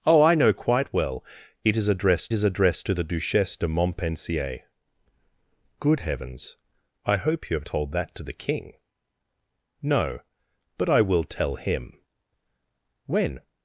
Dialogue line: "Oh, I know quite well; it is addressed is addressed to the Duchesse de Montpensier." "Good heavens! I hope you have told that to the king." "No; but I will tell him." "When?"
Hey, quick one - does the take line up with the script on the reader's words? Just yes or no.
yes